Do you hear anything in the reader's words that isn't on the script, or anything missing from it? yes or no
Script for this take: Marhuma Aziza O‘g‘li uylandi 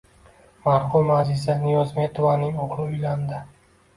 yes